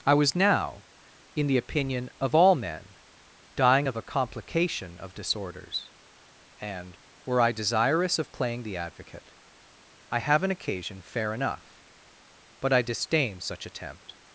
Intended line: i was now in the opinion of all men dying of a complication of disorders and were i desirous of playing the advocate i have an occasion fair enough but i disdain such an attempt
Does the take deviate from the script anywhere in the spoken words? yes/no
yes